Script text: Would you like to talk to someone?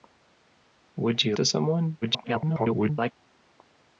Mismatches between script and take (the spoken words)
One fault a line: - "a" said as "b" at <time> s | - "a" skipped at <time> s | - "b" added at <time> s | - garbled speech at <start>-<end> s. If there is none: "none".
- "like to talk" skipped at 1.4 s
- garbled speech at 2.0-3.1 s